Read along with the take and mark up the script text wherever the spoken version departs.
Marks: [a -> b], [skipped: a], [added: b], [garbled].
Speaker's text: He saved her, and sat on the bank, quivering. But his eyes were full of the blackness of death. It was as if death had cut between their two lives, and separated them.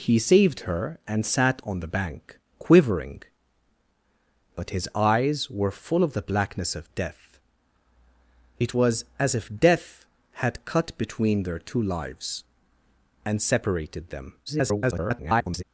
He saved her, and sat on the bank, quivering. But his eyes were full of the blackness of death. It was as if death had cut between their two lives, and separated them. [garbled]